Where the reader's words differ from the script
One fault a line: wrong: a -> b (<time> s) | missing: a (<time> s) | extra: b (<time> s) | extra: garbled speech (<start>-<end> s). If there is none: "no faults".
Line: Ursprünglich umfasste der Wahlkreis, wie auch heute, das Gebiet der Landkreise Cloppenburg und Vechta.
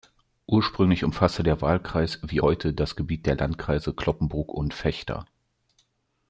missing: auch (2.4 s)